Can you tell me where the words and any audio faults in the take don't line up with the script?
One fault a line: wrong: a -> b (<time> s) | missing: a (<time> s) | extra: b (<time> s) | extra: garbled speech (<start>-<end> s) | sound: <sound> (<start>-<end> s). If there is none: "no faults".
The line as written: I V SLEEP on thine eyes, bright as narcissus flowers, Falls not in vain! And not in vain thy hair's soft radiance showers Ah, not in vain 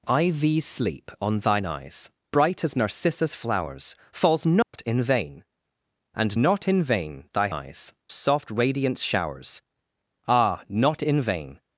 sound: dropout (4.6-4.7 s)
wrong: hair's -> eyes (7.5 s)